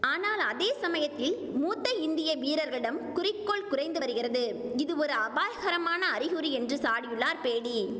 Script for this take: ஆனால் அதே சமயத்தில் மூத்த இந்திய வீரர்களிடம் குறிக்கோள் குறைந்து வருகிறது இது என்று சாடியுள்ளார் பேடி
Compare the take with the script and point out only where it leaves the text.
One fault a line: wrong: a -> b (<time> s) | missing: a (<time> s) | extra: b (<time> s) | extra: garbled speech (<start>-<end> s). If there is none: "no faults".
extra: ஒரு அபாயகரமான அறிகுறி (5.0 s)